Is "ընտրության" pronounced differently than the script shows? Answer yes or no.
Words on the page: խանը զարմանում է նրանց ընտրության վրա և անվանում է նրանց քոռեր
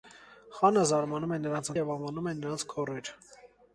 yes